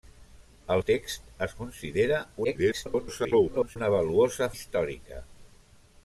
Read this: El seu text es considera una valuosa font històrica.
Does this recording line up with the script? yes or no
no